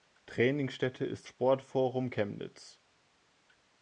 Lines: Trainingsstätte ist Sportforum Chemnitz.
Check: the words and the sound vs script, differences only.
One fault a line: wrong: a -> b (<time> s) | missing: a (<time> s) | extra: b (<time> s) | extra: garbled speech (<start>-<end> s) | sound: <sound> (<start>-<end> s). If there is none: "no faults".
no faults